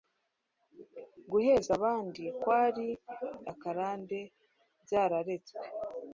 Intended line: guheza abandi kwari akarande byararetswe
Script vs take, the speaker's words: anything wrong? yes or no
no